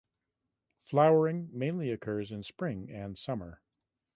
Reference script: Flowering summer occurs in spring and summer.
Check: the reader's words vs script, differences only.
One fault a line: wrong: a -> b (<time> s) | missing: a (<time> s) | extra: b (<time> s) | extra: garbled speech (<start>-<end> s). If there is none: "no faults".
wrong: summer -> mainly (1.5 s)